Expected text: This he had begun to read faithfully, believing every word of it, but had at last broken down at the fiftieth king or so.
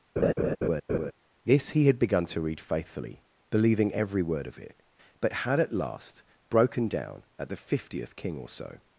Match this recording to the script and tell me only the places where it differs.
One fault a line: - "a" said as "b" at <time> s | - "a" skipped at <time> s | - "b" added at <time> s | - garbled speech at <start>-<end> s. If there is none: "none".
none